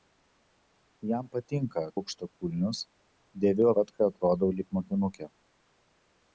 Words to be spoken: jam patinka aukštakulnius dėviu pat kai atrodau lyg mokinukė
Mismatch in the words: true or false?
false